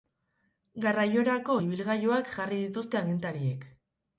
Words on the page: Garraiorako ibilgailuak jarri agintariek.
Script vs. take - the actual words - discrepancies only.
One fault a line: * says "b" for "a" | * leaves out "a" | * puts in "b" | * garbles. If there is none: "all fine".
* puts in "dituzte"